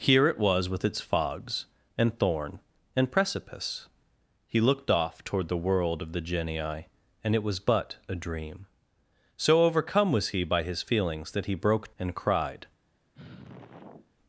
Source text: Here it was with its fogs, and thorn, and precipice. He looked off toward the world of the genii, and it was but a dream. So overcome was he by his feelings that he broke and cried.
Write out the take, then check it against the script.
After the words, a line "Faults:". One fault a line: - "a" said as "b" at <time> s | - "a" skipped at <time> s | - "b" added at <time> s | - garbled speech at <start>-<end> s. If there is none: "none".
Here it was with its fogs, and thorn, and precipice. He looked off toward the world of the genii, and it was but a dream. So overcome was he by his feelings that he broke and cried.
Faults:
none